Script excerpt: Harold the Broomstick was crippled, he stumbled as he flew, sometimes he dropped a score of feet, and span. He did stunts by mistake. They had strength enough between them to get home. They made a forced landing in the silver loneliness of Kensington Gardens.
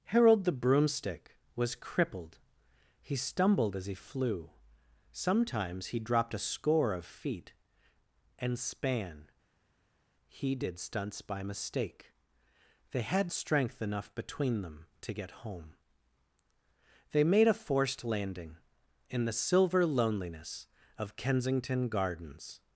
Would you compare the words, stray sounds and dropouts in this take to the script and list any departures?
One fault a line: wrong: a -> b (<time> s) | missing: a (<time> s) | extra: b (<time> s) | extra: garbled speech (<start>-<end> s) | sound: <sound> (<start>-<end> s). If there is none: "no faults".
no faults